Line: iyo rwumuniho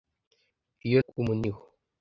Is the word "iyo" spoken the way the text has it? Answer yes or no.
yes